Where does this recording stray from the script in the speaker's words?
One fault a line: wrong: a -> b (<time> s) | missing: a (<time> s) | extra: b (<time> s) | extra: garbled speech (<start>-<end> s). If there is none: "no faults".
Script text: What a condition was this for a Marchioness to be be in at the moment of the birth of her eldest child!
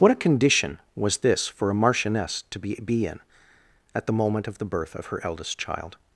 no faults